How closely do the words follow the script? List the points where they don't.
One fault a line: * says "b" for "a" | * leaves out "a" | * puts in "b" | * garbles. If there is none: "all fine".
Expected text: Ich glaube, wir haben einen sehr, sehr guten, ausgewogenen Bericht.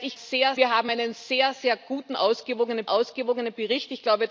* says "sehr" for "glaube"
* puts in "ausgewogenen"